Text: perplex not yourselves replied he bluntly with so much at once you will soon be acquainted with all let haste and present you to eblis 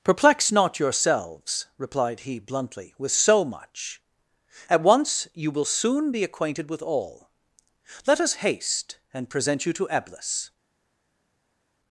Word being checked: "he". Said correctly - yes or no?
yes